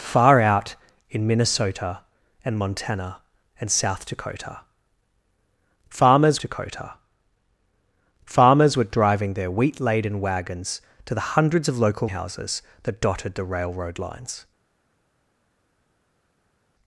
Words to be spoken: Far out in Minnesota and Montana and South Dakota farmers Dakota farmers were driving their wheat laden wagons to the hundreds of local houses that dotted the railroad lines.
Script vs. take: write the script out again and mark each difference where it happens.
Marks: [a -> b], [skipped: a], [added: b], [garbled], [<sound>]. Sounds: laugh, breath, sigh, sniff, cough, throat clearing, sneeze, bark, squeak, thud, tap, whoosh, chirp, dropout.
Far out in Minnesota and Montana and South Dakota farmers Dakota farmers were driving their wheat laden wagons to the hundreds of local houses that dotted the railroad lines.